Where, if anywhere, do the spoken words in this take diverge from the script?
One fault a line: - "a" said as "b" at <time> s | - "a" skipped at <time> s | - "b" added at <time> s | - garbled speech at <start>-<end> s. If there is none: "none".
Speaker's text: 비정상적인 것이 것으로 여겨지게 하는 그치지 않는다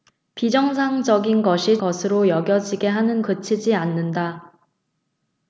none